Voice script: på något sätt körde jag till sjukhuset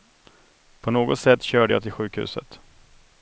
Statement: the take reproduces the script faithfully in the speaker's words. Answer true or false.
true